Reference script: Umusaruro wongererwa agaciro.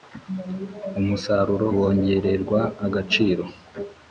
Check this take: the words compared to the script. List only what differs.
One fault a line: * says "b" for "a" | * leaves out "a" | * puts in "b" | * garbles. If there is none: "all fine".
all fine